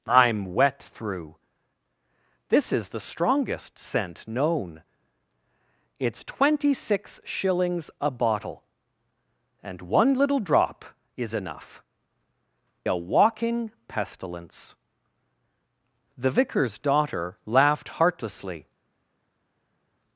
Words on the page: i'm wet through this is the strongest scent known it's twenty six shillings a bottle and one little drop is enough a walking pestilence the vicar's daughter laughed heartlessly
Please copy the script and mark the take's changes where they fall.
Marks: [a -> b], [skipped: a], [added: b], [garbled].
i'm wet through this is the strongest scent known it's twenty six shillings a bottle and one little drop is enough a walking pestilence the vicar's daughter laughed heartlessly